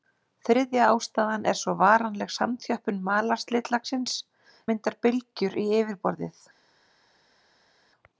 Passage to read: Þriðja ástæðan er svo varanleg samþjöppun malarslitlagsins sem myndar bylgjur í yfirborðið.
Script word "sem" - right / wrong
wrong